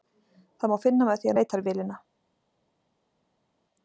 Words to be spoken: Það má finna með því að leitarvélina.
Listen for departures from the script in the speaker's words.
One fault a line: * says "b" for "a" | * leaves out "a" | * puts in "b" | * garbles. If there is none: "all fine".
all fine